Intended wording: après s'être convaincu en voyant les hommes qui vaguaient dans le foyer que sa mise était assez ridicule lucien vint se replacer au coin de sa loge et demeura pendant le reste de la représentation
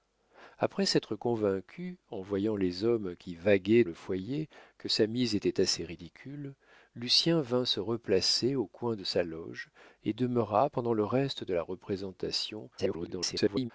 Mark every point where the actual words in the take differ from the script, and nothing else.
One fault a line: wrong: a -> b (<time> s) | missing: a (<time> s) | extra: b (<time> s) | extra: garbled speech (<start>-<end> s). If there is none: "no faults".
missing: dans (3.8 s)
extra: garbled speech (12.8-13.7 s)